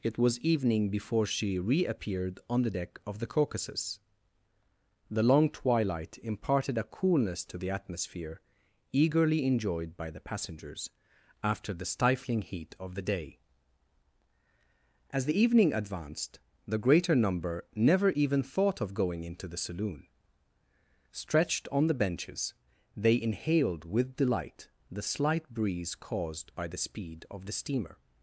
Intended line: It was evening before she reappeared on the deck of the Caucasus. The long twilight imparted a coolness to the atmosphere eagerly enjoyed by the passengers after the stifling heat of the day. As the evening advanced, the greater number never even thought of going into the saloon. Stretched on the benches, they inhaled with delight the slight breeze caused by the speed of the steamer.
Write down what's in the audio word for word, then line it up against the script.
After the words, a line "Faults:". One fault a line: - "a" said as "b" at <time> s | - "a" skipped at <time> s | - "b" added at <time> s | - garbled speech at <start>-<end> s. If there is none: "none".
It was evening before she reappeared on the deck of the Caucasus. The long twilight imparted a coolness to the atmosphere eagerly enjoyed by the passengers after the stifling heat of the day. As the evening advanced, the greater number never even thought of going into the saloon. Stretched on the benches, they inhaled with delight the slight breeze caused by the speed of the steamer.
Faults:
none